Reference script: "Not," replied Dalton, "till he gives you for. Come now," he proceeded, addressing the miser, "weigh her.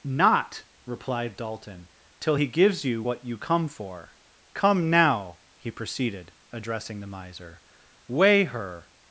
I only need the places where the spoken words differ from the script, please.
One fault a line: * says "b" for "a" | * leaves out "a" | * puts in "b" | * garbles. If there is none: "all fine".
* puts in "what you come"